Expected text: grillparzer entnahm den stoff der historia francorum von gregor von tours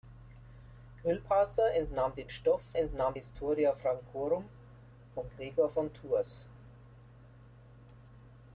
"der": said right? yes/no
no